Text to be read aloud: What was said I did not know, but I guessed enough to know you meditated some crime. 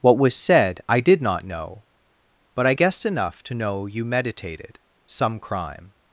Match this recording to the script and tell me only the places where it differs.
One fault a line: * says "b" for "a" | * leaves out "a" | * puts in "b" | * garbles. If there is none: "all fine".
all fine